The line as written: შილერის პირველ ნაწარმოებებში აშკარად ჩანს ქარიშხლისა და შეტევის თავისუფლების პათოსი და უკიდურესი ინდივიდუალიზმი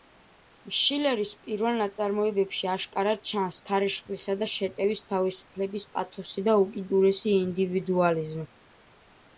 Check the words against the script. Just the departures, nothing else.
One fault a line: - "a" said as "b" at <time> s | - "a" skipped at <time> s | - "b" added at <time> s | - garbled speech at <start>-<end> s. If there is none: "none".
none